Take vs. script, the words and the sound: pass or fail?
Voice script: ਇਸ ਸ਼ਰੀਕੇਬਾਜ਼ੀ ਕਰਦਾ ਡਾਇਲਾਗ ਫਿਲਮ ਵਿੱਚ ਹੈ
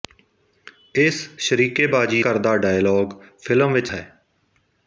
pass